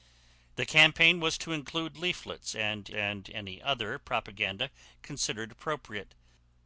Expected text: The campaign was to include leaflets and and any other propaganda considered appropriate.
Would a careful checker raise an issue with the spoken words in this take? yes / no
no